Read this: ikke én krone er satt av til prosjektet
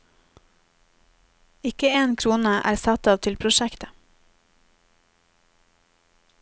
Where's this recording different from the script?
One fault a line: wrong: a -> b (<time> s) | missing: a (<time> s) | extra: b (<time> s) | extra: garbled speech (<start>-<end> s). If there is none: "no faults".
no faults